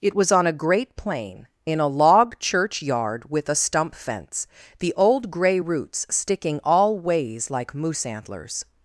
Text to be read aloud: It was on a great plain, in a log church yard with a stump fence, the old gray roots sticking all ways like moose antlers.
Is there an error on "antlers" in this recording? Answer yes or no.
no